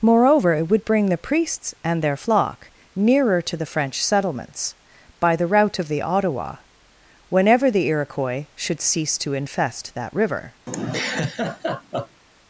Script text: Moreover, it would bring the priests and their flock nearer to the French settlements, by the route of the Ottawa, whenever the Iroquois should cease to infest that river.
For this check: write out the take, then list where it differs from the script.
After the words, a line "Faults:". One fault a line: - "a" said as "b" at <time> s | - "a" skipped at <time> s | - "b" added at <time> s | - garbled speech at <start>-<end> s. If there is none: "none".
Moreover, it would bring the priests and their flock nearer to the French settlements, by the route of the Ottawa, whenever the Iroquois should cease to infest that river.
Faults:
none